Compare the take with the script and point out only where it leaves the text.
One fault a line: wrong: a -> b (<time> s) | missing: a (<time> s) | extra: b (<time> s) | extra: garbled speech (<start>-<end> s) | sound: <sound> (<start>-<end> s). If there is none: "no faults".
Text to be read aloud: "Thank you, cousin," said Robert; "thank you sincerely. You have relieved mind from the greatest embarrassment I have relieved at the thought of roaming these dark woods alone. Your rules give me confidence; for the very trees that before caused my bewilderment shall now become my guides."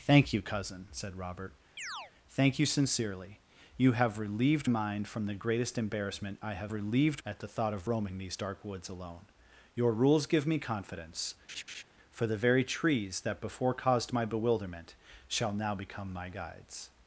sound: chirp (1.8-2.1 s)
sound: laugh (11.5-11.8 s)